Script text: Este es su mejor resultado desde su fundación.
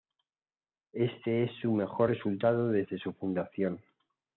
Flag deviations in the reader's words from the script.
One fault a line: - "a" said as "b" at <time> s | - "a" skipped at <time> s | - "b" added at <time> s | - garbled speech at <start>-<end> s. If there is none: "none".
none